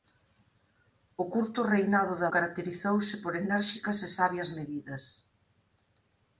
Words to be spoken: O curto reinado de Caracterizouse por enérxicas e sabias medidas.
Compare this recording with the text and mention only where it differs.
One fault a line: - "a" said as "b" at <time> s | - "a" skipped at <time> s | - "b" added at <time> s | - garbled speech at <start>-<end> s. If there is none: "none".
none